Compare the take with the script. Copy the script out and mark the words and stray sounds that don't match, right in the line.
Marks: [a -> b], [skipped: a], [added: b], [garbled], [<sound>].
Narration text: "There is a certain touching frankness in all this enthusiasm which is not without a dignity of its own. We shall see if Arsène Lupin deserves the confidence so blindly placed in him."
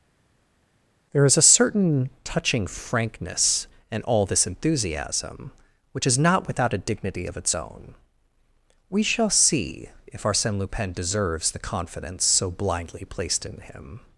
"There is a certain touching frankness in all this enthusiasm which is not without a dignity of its own. We shall see if Arsène Lupin deserves the confidence so blindly placed in him."